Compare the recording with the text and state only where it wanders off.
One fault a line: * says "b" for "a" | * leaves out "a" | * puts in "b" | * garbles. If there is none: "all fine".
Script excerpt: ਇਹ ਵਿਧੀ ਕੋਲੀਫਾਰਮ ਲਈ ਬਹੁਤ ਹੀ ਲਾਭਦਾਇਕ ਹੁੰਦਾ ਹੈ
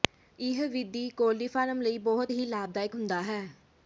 all fine